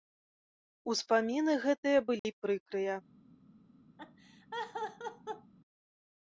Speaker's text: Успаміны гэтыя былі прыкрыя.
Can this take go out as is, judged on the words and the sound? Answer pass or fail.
fail